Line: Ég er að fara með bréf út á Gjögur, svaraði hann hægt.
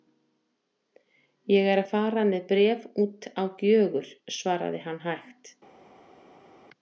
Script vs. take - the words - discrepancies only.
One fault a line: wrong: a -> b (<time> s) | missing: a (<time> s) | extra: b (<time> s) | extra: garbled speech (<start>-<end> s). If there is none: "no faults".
no faults